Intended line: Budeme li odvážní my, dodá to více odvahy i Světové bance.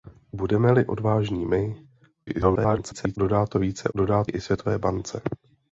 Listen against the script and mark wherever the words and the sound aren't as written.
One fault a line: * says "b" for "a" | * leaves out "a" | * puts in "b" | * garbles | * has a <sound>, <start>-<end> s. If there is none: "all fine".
* garbles
* says "dodá" for "odvahy"